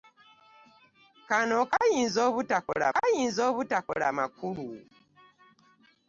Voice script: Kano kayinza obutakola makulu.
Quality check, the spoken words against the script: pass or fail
fail